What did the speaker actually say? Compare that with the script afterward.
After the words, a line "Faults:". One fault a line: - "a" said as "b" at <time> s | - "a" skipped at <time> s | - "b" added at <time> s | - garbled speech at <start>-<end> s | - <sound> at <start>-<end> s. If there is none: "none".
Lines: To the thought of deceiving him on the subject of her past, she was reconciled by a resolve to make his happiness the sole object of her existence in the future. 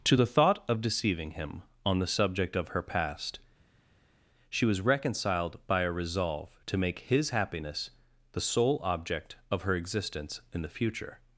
To the thought of deceiving him on the subject of her past, she was reconciled by a resolve to make his happiness the sole object of her existence in the future.
Faults:
none